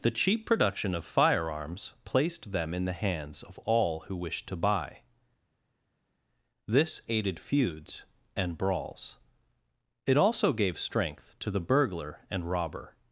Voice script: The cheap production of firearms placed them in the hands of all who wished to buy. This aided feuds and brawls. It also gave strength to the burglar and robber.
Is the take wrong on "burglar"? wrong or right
right